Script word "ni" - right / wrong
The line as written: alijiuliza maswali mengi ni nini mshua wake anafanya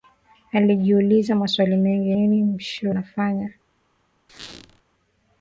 wrong